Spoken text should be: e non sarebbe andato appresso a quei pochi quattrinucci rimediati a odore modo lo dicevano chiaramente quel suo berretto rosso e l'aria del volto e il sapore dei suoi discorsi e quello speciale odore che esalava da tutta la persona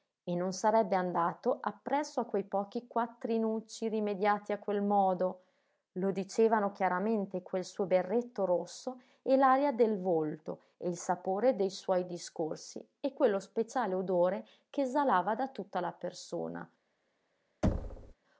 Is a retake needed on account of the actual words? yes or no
yes